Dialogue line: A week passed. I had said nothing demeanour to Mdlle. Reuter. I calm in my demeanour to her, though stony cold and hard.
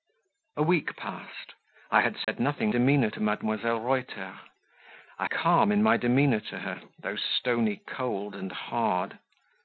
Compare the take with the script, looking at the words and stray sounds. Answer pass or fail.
fail